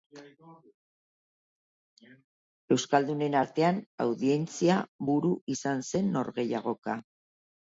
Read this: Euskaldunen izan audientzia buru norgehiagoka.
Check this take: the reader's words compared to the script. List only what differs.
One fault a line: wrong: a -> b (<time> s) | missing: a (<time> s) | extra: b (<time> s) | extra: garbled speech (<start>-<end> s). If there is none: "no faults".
wrong: izan -> artean (3.4 s)
extra: izan zen (5.6 s)